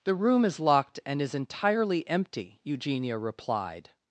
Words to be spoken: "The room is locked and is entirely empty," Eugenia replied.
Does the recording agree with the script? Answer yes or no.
yes